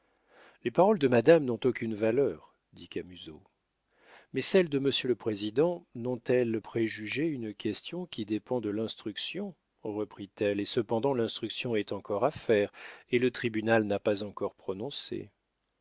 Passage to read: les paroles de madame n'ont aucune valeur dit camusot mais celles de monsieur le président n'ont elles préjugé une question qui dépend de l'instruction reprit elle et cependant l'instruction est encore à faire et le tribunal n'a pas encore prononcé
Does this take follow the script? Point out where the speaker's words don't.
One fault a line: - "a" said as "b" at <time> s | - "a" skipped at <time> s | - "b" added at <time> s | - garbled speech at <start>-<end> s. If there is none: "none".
none